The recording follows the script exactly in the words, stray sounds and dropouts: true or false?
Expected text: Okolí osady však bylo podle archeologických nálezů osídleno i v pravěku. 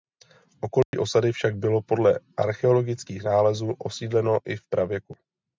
false